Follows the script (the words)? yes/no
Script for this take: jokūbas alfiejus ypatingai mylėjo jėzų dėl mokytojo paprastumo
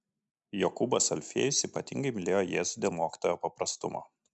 yes